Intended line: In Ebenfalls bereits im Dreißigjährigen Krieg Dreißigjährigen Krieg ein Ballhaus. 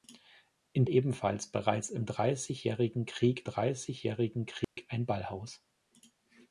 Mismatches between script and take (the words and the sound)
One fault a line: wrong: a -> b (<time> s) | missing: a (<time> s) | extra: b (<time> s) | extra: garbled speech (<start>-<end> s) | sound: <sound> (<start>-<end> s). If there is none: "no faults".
sound: dropout (4.6-4.8 s)